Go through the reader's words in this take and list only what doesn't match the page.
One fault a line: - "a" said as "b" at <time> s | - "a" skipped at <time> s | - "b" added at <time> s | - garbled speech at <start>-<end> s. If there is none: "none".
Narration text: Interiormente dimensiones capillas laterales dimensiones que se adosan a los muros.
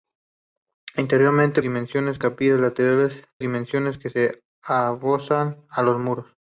none